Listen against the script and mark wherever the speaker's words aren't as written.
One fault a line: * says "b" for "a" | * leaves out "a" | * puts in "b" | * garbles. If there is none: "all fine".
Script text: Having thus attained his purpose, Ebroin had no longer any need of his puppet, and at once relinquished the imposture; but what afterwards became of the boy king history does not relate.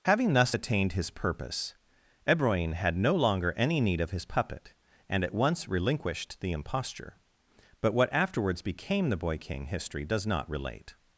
* leaves out "of"